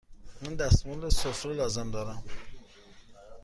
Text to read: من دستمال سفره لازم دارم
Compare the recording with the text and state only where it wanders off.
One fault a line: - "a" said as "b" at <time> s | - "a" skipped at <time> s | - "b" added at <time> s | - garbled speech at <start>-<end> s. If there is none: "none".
none